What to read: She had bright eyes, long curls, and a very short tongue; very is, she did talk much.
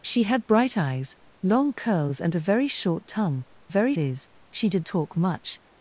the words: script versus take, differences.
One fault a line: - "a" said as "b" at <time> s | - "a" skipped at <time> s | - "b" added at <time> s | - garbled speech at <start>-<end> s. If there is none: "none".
none